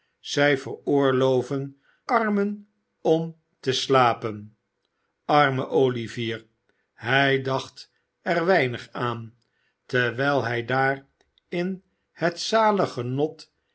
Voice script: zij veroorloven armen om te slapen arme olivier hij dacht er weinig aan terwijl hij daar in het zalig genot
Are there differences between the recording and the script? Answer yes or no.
no